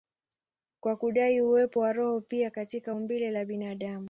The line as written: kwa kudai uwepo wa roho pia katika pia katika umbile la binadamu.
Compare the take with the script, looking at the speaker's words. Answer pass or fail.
fail